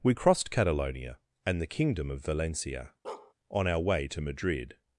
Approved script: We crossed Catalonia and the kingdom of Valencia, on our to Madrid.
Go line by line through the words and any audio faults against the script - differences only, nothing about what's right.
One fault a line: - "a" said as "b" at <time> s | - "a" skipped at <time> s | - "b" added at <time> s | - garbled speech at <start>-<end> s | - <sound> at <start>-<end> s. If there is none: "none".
- bark at 3.0-3.3 s
- "way" added at 3.8 s